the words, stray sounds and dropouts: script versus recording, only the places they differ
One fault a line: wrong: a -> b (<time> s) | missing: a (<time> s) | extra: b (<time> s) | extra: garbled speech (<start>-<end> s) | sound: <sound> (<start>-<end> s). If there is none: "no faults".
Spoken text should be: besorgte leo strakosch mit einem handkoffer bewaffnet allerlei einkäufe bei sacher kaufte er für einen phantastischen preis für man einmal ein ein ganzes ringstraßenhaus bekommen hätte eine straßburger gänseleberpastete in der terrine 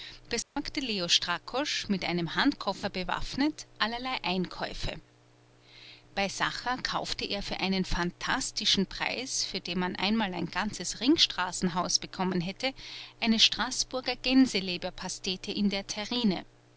sound: dropout (0.4-0.6 s)
extra: den (9.6 s)
missing: ein (10.5 s)